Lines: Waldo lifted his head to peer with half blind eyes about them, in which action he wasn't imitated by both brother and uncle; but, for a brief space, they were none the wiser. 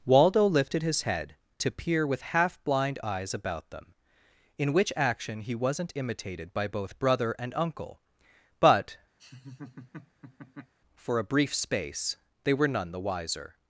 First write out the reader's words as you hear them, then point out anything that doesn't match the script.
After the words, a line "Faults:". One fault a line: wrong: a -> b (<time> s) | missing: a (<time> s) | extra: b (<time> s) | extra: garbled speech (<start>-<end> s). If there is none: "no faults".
Waldo lifted his head to peer with half blind eyes about them, in which action he wasn't imitated by both brother and uncle; but, for a brief space, they were none the wiser.
Faults:
no faults